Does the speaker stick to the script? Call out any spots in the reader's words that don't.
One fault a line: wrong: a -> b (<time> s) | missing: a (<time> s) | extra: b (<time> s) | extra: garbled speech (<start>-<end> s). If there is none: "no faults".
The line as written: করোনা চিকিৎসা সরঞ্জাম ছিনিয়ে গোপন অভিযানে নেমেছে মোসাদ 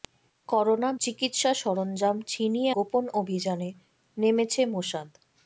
no faults